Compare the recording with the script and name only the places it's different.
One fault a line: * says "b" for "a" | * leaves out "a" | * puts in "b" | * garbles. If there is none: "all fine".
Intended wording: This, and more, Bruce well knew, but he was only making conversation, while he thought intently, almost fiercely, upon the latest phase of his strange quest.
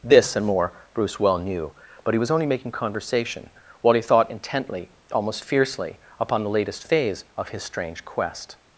all fine